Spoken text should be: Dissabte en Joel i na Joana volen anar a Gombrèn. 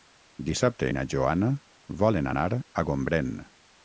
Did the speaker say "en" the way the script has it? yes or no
no